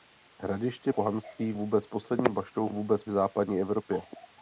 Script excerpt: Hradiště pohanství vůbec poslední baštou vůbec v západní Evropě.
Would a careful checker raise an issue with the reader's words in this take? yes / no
no